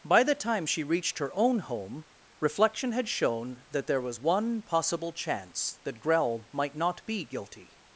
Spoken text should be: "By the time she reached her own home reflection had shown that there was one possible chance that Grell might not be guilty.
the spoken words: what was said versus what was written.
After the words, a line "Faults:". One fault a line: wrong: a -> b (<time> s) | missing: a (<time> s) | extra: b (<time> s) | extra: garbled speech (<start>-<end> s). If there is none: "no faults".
"By the time she reached her own home reflection had shown that there was one possible chance that Grell might not be guilty.
Faults:
no faults